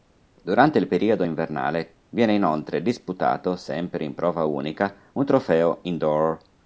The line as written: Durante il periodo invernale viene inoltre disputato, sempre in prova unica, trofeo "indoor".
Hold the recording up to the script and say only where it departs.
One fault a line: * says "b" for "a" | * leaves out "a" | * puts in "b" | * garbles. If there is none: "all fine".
* puts in "un"